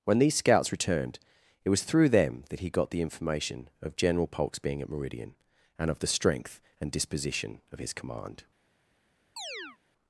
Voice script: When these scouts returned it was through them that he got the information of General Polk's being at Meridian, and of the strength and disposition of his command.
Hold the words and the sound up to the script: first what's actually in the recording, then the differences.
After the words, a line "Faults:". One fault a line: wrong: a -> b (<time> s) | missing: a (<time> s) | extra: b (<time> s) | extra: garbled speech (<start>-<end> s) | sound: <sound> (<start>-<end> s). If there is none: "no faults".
When these scouts returned it was through them that he got the information of General Polk's being at Meridian, and of the strength and disposition of his command.
Faults:
sound: chirp (9.4-9.8 s)